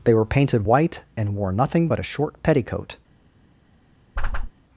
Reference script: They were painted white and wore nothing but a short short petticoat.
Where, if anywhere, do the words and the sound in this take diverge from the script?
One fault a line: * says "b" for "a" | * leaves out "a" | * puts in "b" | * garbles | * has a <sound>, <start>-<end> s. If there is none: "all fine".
* leaves out "short"
* has a whoosh, 4.2-4.5 s